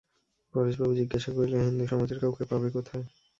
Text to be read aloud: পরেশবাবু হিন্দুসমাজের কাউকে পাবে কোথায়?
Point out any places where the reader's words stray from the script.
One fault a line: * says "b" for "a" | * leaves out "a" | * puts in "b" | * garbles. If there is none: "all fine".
* puts in "জিজ্ঞাসা করিলেন"